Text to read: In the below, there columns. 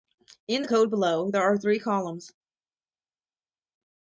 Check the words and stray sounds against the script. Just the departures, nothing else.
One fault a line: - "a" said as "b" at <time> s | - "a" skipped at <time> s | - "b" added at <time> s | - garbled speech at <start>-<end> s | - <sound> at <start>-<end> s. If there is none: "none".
- "code" added at 0.7 s
- "are three" added at 1.4 s